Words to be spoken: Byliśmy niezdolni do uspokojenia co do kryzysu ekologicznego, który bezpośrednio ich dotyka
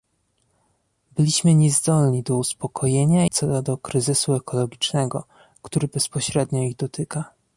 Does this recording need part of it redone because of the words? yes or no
no